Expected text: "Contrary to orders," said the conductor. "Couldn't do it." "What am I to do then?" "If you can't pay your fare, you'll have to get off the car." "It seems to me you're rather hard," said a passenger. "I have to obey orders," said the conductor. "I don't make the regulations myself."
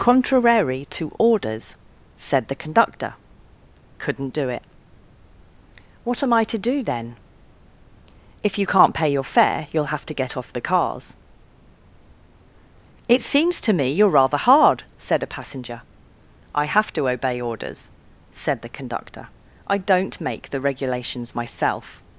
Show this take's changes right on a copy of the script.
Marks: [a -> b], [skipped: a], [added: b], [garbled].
"Contrary to orders," said the conductor. "Couldn't do it." "What am I to do then?" "If you can't pay your fare, you'll have to get off the [car." -> cars] "It seems to me you're rather hard," said a passenger. "I have to obey orders," said the conductor. "I don't make the regulations myself."